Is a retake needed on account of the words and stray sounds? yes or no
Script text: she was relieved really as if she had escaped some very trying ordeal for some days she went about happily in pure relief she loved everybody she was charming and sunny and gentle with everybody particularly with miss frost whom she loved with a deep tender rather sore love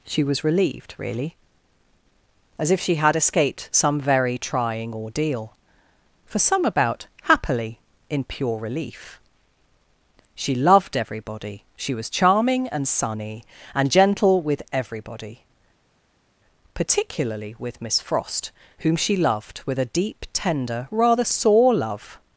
yes